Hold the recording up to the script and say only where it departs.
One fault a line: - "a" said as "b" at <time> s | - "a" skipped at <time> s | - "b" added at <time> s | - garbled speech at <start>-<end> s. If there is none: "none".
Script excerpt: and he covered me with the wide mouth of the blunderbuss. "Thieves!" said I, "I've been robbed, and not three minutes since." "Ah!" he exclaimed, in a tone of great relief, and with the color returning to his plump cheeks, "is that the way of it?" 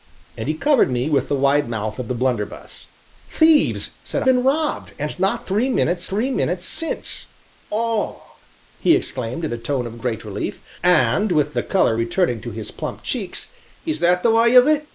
- "I I've" skipped at 4.2 s
- "three minutes" added at 6.1 s